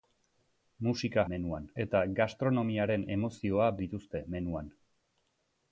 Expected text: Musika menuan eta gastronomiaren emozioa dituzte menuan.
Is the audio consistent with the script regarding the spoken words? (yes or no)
yes